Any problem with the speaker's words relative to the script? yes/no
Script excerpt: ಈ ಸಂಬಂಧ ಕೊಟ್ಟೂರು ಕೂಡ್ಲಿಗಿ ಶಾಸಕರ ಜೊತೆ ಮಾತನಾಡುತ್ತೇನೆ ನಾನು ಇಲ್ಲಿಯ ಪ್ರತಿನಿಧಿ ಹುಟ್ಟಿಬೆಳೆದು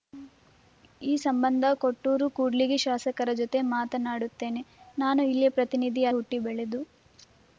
no